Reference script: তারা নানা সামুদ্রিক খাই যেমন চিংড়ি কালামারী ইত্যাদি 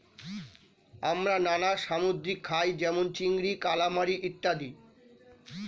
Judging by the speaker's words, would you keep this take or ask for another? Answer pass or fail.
fail